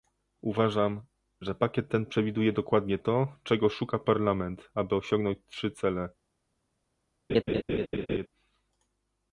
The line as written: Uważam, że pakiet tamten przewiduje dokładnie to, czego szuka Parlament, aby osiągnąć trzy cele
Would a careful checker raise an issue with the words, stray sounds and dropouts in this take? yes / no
yes